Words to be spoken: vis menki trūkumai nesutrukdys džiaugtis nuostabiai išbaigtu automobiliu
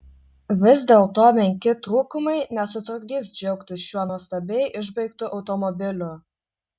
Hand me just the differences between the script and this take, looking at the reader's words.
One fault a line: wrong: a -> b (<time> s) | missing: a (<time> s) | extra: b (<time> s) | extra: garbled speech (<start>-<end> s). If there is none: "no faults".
extra: dėlto (0.9 s)
extra: šiuo (3.9 s)